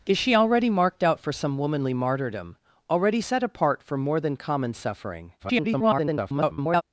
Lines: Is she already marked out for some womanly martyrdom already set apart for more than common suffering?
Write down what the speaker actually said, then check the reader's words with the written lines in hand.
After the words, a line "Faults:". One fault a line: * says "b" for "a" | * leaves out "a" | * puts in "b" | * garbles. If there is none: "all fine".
Is she already marked out for some womanly martyrdom already set apart for more than common suffering? [garbled]
Faults:
* garbles